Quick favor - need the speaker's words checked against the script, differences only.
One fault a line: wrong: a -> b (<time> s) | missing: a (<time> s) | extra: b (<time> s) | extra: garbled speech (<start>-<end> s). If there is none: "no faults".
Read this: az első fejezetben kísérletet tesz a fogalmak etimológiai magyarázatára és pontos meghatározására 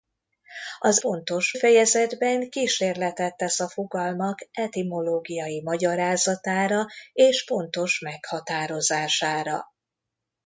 wrong: első -> pontos (1.0 s)